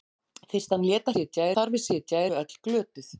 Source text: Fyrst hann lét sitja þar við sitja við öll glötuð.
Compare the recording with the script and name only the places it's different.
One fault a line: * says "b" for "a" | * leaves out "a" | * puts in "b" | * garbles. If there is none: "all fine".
all fine